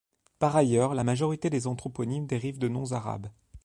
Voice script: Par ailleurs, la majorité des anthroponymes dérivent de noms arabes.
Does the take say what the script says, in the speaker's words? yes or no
yes